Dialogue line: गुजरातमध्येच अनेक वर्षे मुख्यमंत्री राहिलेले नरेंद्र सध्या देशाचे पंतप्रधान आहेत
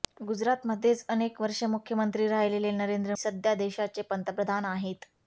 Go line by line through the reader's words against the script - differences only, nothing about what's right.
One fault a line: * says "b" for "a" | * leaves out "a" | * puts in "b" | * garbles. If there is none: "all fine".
all fine